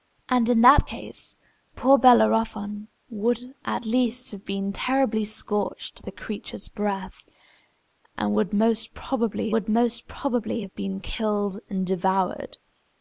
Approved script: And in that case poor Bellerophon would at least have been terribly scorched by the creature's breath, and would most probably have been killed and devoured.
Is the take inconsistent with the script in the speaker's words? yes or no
yes